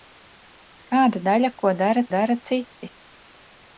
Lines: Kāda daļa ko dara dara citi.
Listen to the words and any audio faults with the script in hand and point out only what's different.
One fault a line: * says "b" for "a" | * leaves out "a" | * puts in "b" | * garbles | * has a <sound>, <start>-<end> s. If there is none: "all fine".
all fine